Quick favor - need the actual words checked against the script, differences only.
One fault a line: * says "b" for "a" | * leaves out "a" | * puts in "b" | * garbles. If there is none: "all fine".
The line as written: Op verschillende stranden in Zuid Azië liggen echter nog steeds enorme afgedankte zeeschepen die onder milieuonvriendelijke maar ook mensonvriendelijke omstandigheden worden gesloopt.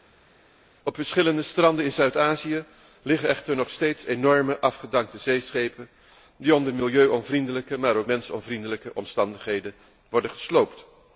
all fine